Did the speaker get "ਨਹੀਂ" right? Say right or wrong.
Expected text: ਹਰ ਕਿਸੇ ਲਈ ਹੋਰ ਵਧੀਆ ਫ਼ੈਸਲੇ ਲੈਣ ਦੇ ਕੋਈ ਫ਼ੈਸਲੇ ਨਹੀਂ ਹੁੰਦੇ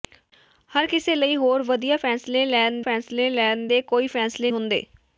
wrong